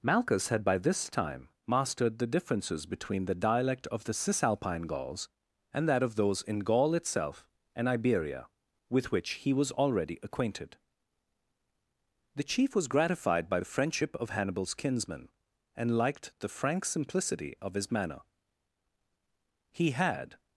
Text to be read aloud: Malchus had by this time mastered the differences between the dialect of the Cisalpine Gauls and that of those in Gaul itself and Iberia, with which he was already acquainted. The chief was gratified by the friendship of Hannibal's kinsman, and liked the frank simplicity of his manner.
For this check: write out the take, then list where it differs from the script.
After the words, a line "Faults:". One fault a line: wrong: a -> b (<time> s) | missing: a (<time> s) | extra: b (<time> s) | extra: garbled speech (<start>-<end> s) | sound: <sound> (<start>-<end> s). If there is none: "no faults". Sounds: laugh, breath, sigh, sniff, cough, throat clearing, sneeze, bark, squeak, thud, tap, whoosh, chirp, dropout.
Malchus had by this time mastered the differences between the dialect of the Cisalpine Gauls and that of those in Gaul itself and Iberia, with which he was already acquainted. The chief was gratified by the friendship of Hannibal's kinsman, and liked the frank simplicity of his manner. He had
Faults:
extra: He had (19.7 s)